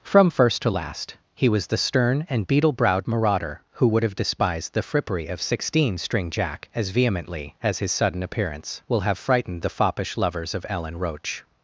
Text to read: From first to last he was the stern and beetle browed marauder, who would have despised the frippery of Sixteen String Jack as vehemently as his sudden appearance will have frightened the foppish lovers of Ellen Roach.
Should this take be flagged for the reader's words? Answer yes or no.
no